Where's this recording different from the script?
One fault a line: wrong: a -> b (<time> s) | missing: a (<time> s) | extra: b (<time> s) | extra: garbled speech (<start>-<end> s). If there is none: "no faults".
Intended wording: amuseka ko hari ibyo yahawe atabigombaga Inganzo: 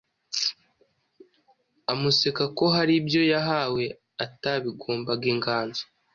no faults